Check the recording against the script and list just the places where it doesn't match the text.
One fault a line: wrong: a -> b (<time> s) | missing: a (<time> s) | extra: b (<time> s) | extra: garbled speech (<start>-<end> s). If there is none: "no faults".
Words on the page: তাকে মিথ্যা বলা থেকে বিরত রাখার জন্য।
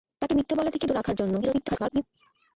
missing: বিরত (0.8 s)
extra: garbled speech (1.4-2.0 s)